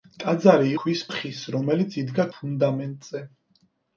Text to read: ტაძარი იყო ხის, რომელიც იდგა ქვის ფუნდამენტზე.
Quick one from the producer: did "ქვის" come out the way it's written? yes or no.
no